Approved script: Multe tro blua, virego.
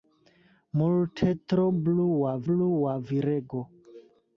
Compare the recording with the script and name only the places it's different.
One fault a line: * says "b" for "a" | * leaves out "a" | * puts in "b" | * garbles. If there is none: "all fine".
* puts in "blua"